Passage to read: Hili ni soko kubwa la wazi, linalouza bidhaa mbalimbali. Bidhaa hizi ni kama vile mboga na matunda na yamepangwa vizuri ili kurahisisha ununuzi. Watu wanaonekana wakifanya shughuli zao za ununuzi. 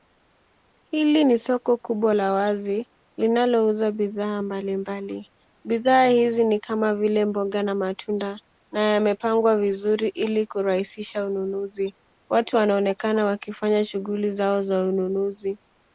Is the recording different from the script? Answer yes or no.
no